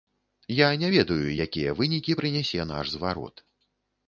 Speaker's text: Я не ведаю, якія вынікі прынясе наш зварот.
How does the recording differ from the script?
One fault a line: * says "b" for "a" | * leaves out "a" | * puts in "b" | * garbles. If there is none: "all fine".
all fine